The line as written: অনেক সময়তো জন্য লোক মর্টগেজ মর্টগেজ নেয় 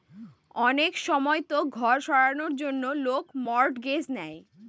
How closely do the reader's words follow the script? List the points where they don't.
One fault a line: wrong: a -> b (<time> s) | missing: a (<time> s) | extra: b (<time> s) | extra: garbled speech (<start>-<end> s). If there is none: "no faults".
extra: ঘর সারানোর (1.8 s)
missing: মর্টগেজ (4.0 s)